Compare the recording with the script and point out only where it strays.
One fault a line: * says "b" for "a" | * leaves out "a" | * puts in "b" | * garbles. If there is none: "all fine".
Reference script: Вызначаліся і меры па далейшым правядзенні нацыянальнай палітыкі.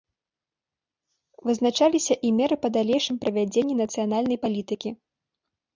all fine